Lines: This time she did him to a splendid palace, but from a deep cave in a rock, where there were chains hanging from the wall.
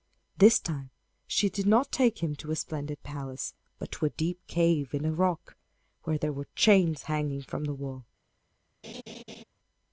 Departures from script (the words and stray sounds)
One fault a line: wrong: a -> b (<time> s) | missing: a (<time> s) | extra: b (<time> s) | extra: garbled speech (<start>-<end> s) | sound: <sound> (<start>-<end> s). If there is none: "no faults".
extra: not take (1.7 s)
wrong: from -> to (3.9 s)
sound: laugh (8.8-9.4 s)